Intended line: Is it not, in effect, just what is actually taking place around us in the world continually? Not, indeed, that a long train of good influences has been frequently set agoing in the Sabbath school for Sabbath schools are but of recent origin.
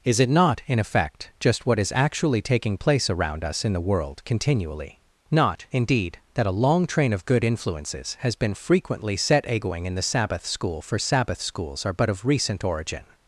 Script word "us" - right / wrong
right